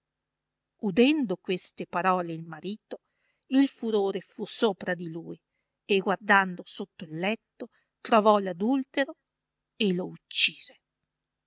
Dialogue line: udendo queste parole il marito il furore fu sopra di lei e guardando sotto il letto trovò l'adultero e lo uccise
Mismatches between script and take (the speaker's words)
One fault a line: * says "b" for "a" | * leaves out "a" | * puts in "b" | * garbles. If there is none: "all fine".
* says "lui" for "lei"